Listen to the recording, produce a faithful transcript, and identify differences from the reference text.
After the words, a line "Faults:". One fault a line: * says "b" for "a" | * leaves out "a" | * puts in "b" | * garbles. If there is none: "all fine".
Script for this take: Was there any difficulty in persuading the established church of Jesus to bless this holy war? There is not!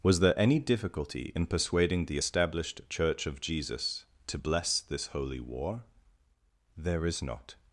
Was there any difficulty in persuading the established church of Jesus to bless this holy war? There is not!
Faults:
all fine